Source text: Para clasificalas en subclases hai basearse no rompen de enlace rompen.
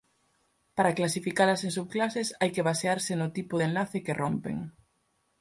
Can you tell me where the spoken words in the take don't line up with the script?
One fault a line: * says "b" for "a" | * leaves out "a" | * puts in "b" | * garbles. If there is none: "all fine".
* puts in "que"
* says "tipo" for "rompen"
* puts in "que"